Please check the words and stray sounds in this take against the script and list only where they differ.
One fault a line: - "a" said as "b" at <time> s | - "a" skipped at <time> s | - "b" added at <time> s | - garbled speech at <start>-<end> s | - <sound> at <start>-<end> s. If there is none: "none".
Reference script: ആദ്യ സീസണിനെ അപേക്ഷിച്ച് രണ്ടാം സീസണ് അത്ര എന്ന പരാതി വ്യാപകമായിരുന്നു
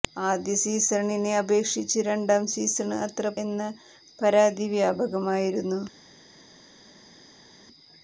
none